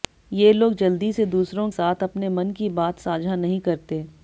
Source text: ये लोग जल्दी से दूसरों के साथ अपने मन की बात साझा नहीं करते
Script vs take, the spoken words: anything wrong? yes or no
yes